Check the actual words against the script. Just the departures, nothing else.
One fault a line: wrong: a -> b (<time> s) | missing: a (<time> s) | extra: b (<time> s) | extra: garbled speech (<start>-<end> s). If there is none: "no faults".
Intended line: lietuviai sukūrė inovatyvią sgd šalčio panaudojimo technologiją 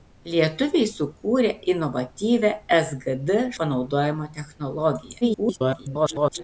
missing: šalčio (3.4 s)
extra: garbled speech (5.2-6.4 s)